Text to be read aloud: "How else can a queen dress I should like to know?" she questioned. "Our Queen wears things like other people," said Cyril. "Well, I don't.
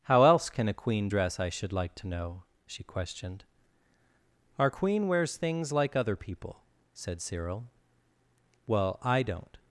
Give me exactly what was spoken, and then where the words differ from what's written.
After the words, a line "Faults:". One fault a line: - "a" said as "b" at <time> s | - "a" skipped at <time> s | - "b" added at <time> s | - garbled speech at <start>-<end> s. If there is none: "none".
"How else can a queen dress I should like to know?" she questioned. "Our Queen wears things like other people," said Cyril. "Well, I don't.
Faults:
none